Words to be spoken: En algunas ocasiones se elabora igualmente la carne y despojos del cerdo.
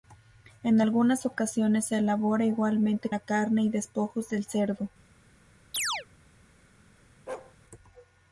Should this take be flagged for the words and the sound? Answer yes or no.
yes